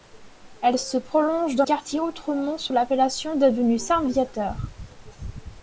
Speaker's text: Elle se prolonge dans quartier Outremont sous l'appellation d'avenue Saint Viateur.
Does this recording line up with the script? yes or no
yes